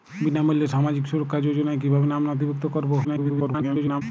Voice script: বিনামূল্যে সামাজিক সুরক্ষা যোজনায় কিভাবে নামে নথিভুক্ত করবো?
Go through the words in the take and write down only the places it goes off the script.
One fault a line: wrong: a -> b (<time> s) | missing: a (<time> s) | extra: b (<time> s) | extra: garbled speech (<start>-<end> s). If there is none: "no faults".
extra: garbled speech (3.0-4.0 s)